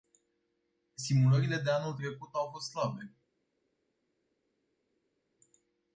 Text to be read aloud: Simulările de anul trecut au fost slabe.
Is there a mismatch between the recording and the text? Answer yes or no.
no